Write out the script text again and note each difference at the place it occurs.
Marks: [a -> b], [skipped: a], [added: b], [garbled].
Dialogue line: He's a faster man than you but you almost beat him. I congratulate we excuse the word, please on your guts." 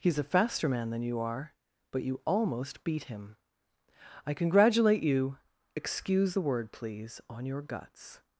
He's a faster man than you [added: are] but you almost beat him. I congratulate [we -> you] excuse the word, please on your guts."